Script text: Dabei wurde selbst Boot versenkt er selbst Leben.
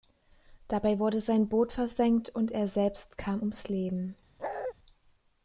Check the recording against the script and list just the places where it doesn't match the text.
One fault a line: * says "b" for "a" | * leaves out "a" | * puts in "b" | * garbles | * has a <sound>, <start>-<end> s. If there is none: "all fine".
* says "sein" for "selbst"
* puts in "und"
* puts in "kam ums"
* has a bark, 4.4-4.7 s